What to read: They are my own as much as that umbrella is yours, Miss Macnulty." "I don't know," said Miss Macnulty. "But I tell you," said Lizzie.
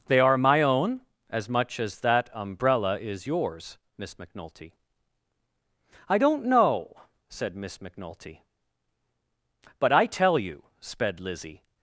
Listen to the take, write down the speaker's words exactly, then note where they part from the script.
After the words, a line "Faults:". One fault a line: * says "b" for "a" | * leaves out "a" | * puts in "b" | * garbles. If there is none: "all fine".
They are my own as much as that umbrella is yours, Miss Macnulty." "I don't know," said Miss Macnulty. "But I tell you," sped Lizzie.
Faults:
* says "sped" for "said"